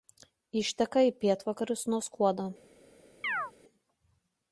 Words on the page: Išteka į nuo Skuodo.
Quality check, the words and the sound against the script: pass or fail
fail